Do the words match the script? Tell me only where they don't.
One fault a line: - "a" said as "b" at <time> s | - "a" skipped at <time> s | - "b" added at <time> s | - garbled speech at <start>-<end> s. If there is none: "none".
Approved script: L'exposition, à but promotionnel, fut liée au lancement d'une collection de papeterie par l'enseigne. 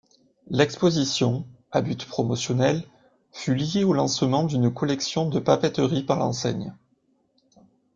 none